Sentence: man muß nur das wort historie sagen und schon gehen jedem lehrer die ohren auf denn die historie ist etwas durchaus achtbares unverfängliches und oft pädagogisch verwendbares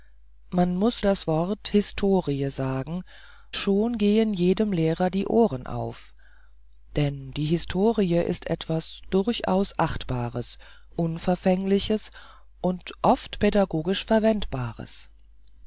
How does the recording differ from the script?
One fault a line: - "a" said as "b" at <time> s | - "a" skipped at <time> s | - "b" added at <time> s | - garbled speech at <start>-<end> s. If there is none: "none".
- "nur" skipped at 1.1 s
- "und" skipped at 3.0 s